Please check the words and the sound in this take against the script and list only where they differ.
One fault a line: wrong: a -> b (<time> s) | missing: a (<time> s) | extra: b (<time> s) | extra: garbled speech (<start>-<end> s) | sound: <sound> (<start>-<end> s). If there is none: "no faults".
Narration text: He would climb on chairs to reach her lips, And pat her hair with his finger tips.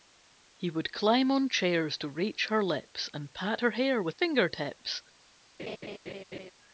missing: his (4.1 s)
sound: laugh (5.6-6.5 s)